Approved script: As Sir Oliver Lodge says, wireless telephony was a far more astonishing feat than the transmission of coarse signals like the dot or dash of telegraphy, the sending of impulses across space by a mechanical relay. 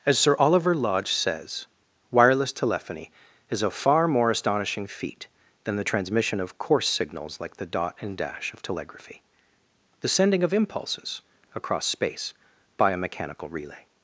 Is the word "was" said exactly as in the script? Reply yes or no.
no